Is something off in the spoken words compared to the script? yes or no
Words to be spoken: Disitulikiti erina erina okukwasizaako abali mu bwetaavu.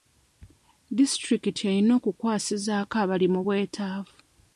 yes